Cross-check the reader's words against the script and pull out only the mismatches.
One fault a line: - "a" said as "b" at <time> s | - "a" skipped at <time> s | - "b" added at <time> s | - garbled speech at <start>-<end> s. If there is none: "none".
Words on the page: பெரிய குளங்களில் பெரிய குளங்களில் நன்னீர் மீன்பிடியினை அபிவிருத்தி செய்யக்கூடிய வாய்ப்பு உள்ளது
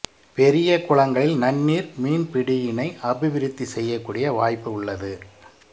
- "பெரிய குளங்களில்" skipped at 1.4 s